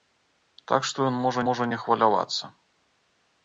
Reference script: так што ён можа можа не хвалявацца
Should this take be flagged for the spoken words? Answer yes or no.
no